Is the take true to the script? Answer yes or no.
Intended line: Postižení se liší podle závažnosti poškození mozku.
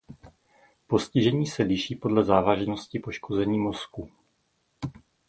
yes